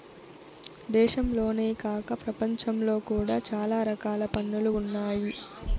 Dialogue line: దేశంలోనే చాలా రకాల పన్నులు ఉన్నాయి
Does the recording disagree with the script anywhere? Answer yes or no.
yes